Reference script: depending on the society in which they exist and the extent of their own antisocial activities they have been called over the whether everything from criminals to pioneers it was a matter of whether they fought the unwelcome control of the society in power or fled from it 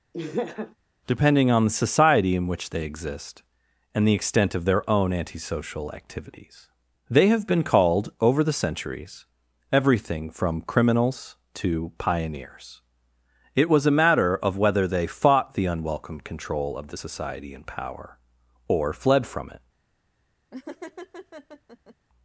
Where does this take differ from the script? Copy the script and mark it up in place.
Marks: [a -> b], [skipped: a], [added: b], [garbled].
depending on the society in which they exist and the extent of their own antisocial activities they have been called over the [whether -> centuries] everything from criminals to pioneers it was a matter of whether they fought the unwelcome control of the society in power or fled from it